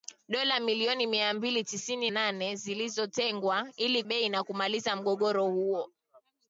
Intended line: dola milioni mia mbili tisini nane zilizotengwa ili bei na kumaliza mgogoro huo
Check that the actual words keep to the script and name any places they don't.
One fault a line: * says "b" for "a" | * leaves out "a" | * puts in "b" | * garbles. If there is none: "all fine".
all fine